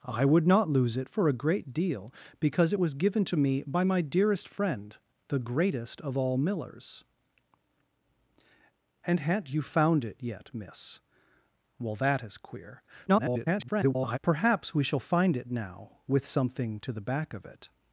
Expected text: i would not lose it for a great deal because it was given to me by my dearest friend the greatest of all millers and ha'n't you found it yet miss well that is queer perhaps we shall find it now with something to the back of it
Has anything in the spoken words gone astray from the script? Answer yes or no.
yes